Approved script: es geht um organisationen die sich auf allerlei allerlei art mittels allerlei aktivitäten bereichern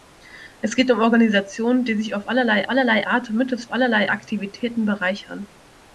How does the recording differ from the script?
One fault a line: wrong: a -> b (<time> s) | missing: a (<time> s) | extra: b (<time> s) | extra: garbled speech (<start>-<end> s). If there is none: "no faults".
no faults